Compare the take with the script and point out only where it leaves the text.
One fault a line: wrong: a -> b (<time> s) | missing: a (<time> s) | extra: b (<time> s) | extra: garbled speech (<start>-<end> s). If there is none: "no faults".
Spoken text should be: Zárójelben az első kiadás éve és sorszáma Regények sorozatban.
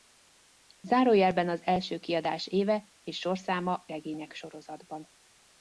no faults